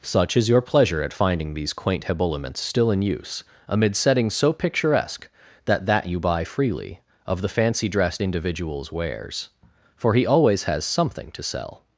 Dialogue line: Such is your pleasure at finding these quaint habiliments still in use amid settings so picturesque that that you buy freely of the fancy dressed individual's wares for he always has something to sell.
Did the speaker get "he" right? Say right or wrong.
right